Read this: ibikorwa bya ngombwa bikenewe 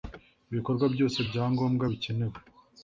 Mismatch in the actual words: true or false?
true